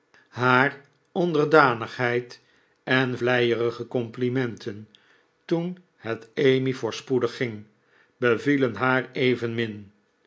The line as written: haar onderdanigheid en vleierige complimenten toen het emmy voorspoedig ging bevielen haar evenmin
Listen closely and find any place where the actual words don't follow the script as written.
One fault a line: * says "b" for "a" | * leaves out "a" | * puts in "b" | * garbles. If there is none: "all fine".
all fine